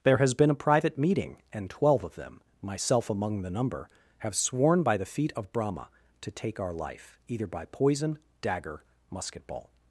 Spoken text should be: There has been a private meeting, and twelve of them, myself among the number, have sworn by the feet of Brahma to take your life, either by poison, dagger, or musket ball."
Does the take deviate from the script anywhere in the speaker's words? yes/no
yes